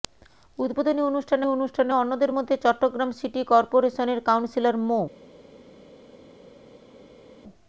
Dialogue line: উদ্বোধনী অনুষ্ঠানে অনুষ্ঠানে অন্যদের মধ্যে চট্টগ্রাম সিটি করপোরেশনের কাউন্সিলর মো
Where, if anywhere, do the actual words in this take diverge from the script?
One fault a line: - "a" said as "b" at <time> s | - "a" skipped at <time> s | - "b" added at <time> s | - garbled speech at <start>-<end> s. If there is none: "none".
none